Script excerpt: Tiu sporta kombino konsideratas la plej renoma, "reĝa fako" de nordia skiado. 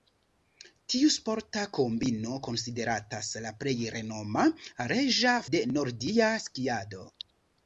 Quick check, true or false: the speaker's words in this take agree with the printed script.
false